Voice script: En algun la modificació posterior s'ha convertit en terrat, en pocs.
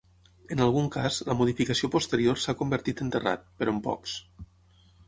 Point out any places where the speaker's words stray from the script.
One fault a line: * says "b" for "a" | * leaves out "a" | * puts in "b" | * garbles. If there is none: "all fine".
* puts in "cas"
* puts in "però"